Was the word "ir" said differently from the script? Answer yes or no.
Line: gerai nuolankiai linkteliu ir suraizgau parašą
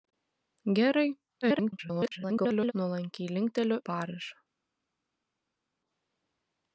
yes